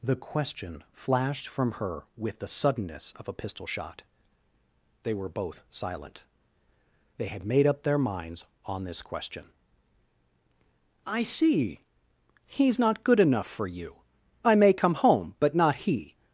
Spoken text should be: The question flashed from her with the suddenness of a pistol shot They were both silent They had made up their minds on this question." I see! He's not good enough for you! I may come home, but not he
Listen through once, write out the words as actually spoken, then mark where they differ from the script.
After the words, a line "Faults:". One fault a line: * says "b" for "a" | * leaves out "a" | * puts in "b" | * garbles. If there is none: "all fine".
The question flashed from her with the suddenness of a pistol shot They were both silent They had made up their minds on this question." I see! He's not good enough for you! I may come home, but not he
Faults:
all fine